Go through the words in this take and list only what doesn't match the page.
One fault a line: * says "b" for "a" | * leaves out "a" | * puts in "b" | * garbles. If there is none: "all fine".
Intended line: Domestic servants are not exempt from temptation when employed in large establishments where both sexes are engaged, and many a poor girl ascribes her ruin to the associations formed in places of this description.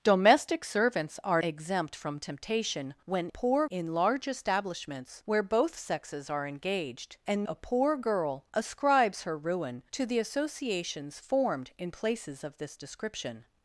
* leaves out "not"
* says "poor" for "employed"
* leaves out "many"